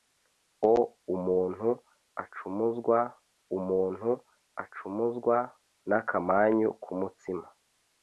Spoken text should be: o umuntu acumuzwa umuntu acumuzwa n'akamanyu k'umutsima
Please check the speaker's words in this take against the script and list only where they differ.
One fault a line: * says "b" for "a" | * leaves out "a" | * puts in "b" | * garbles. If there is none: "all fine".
all fine